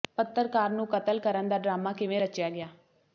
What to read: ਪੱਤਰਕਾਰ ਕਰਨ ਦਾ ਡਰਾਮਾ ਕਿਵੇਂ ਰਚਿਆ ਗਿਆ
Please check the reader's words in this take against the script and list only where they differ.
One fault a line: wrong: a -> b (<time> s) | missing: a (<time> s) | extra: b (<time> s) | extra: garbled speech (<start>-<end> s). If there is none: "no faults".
extra: ਨੂੰ ਕਤਲ (0.7 s)